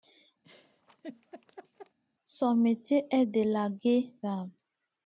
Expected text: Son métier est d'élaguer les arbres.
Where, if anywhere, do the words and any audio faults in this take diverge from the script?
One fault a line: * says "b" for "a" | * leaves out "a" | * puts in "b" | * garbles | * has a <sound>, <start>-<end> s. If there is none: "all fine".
* has a laugh, 0.4-2.0 s
* leaves out "les"